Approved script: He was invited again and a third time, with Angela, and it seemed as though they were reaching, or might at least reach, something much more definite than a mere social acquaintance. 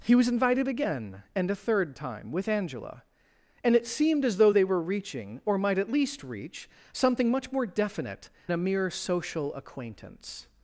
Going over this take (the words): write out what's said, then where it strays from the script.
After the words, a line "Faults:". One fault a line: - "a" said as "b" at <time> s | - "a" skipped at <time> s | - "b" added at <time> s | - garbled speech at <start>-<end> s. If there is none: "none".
He was invited again and a third time, with Angela, and it seemed as though they were reaching, or might at least reach, something much more definite a mere social acquaintance.
Faults:
- "than" skipped at 8.3 s